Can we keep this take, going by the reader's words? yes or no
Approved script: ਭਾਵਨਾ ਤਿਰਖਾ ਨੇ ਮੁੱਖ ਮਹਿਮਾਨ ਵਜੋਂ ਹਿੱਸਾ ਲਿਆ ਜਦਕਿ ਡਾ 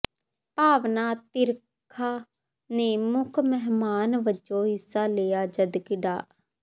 yes